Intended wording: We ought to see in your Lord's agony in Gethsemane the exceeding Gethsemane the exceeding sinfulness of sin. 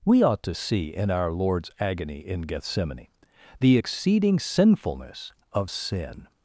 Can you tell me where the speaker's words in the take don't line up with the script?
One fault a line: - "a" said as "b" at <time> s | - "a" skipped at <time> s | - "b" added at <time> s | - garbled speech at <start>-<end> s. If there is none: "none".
- "your" said as "our" at 1.1 s
- "Gethsemane the exceeding" skipped at 4.4 s